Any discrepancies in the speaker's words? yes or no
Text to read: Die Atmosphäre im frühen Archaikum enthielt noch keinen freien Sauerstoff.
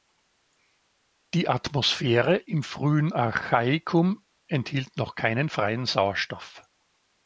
no